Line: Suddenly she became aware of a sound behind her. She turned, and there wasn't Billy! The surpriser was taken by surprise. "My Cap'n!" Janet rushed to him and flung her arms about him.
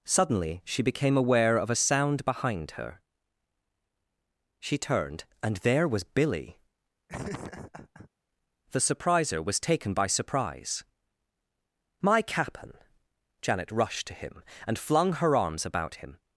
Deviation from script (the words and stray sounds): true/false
true